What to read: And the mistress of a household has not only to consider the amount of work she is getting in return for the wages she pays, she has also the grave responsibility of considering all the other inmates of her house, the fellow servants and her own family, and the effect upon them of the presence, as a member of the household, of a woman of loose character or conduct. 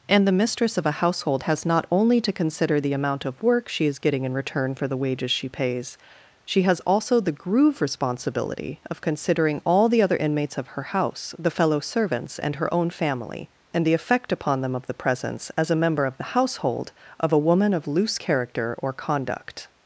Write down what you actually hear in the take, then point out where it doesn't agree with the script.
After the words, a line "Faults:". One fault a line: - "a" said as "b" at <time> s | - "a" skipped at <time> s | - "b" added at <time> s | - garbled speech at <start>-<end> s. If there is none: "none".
And the mistress of a household has not only to consider the amount of work she is getting in return for the wages she pays, she has also the groove responsibility of considering all the other inmates of her house, the fellow servants and her own family, and the effect upon them of the presence, as a member of the household, of a woman of loose character or conduct.
Faults:
- "grave" said as "groove" at 7.3 s